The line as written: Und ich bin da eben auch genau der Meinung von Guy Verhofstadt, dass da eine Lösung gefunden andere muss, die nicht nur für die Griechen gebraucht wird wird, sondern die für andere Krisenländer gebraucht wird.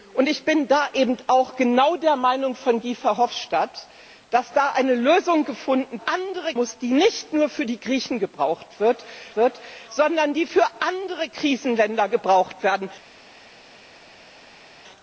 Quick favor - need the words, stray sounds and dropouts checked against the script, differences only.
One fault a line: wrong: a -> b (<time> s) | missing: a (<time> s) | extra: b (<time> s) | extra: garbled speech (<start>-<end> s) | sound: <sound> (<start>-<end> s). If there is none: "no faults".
no faults